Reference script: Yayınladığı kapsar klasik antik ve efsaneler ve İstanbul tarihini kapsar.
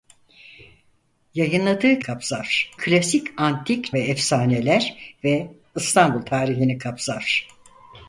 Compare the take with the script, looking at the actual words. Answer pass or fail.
pass